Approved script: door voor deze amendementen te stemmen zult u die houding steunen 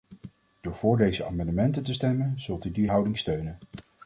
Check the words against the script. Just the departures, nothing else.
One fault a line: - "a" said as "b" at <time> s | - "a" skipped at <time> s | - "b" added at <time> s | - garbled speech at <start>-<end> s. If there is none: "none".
none